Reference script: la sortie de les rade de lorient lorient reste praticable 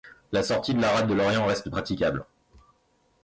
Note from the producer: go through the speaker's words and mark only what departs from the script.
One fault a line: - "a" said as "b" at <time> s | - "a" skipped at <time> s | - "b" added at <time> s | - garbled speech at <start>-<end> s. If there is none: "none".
- "les" said as "la" at 0.8 s
- "lorient" skipped at 1.4 s